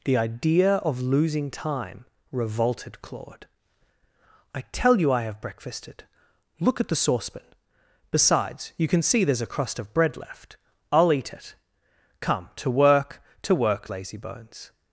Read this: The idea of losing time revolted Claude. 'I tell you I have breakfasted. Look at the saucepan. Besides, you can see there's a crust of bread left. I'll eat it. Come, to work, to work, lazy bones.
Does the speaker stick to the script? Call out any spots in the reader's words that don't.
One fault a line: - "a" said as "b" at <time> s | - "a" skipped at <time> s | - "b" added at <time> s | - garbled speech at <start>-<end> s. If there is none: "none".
none